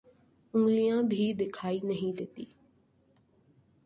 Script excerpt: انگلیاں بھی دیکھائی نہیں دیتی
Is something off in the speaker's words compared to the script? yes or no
no